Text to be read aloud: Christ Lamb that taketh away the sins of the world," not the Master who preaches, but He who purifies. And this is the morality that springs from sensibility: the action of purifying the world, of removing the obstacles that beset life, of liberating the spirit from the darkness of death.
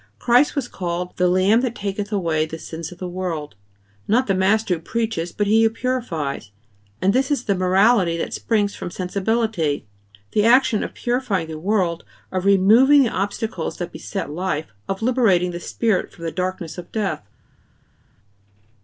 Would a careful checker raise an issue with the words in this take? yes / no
yes